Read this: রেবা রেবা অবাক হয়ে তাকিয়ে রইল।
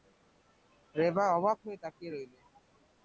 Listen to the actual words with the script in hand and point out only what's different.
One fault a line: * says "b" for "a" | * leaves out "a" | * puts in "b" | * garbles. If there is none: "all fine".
* leaves out "রেবা"